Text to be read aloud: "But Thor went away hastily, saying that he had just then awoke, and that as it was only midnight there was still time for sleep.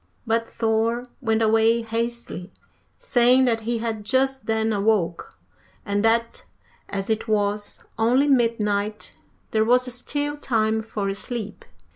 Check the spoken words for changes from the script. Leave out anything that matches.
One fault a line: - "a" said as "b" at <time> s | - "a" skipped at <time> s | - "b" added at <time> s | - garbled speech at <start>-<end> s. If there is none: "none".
none